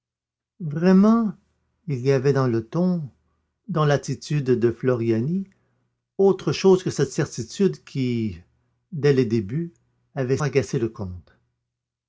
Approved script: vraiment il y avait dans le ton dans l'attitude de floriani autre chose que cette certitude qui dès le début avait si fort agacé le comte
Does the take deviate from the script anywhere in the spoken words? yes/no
yes